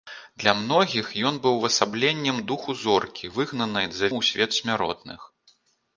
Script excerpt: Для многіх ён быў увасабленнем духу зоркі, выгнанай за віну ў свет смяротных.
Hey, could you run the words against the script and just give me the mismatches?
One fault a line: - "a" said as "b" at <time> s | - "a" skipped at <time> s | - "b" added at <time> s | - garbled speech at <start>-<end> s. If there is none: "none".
- "віну" skipped at 4.1 s